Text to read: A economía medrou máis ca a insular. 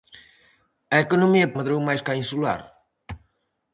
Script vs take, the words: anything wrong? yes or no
no